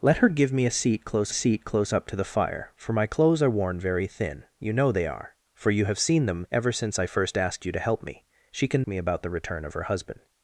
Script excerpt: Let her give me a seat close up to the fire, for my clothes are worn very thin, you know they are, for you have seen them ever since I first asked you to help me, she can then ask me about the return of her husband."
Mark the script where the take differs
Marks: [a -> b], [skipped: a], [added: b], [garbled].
Let her give me a seat close [added: seat close] up to the fire, for my clothes are worn very thin, you know they are, for you have seen them ever since I first asked you to help me, she can [skipped: then ask] me about the return of her husband."